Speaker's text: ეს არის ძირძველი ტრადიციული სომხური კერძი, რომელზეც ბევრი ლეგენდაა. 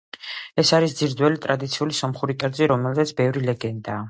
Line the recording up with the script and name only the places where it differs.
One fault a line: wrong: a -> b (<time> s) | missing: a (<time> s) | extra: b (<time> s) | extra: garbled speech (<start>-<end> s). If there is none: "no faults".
no faults